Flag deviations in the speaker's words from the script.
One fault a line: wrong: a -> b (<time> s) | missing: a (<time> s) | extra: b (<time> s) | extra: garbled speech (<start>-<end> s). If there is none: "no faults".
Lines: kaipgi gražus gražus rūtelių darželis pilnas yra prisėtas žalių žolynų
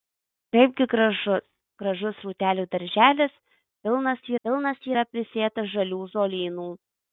extra: pilnas (4.5 s)